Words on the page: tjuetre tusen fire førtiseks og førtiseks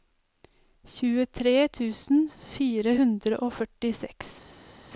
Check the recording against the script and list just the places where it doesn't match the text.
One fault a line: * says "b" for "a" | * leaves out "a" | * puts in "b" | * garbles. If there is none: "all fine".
* says "hundre" for "førtiseks"